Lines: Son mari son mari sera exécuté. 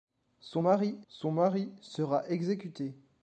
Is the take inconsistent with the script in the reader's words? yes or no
no